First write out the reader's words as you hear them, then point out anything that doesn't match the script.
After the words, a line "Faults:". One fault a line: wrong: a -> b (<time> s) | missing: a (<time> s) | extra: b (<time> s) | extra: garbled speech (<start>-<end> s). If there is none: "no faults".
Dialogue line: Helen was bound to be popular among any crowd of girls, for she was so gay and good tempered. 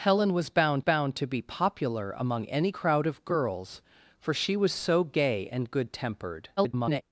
Helen was bound bound to be popular among any crowd of girls, for she was so gay and good tempered. [garbled]
Faults:
extra: bound (0.8 s)
extra: garbled speech (6.6-7.0 s)